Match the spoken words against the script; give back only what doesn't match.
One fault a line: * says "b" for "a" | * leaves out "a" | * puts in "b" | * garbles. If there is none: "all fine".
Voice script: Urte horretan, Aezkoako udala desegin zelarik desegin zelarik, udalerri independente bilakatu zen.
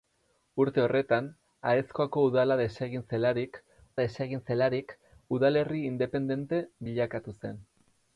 all fine